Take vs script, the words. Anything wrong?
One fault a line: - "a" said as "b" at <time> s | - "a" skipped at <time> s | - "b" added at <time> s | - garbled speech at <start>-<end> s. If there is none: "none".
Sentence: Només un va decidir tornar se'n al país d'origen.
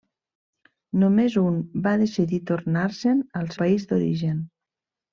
none